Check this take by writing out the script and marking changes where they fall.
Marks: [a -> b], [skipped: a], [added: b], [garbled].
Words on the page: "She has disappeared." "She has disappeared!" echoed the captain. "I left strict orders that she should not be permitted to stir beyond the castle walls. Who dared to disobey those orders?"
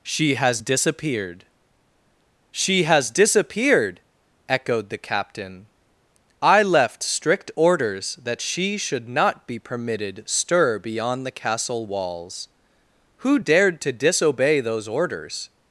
"She has disappeared." "She has disappeared!" echoed the captain. "I left strict orders that she should not be permitted [skipped: to] stir beyond the castle walls. Who dared to disobey those orders?"